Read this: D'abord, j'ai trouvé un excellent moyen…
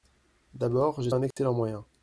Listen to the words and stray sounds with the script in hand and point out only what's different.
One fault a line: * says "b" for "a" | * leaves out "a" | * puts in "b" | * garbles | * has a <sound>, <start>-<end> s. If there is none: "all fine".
* leaves out "trouvé"
* has a dropout, 1.3-1.4 s